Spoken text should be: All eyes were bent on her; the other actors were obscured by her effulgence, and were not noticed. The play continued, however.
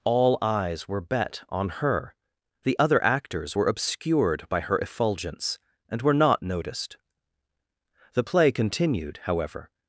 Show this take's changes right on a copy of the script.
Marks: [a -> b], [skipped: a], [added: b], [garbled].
All eyes were [bent -> bet] on her; the other actors were obscured by her effulgence, and were not noticed. The play continued, however.